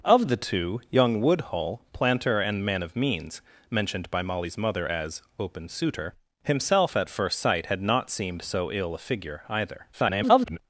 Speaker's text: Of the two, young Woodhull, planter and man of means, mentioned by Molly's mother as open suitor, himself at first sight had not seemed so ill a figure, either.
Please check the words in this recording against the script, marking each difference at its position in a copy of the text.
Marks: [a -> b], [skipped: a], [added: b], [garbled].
Of the two, young Woodhull, planter and man of means, mentioned by Molly's mother as open suitor, himself at first sight had not seemed so ill a figure, either. [garbled]